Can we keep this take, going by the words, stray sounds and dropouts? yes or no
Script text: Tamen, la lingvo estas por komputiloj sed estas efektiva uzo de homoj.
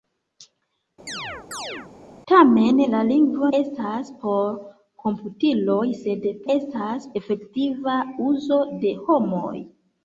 no